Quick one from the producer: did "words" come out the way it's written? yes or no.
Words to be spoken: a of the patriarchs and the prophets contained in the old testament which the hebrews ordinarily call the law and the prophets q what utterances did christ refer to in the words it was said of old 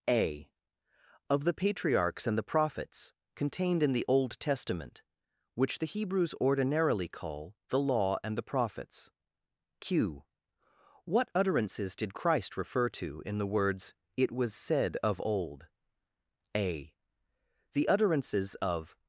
yes